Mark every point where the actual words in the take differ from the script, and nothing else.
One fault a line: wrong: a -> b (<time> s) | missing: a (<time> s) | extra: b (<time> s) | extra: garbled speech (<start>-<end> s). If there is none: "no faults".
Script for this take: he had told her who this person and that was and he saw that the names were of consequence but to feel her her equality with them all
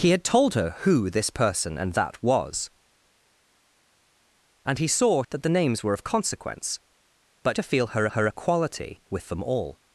no faults